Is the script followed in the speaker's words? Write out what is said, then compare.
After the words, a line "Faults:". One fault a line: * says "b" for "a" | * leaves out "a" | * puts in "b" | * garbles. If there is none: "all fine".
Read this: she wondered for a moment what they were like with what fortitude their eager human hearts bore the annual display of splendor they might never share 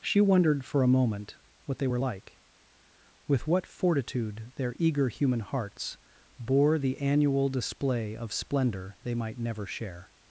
she wondered for a moment what they were like with what fortitude their eager human hearts bore the annual display of splendor they might never share
Faults:
all fine